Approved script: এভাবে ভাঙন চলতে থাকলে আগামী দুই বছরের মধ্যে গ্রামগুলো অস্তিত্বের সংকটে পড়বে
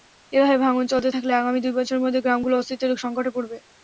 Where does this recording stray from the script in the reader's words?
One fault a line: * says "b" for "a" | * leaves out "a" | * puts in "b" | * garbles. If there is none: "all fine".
all fine